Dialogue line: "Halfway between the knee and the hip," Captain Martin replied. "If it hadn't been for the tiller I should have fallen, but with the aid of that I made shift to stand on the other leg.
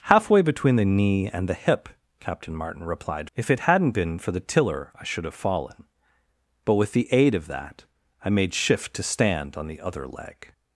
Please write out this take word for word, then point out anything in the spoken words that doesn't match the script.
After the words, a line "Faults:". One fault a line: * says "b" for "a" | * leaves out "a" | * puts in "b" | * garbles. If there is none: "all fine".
"Halfway between the knee and the hip," Captain Martin replied. "If it hadn't been for the tiller I should have fallen, but with the aid of that I made shift to stand on the other leg.
Faults:
all fine